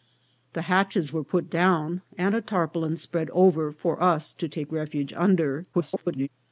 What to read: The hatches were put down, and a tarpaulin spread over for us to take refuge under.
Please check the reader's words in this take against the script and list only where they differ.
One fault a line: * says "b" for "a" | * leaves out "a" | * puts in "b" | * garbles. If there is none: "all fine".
* garbles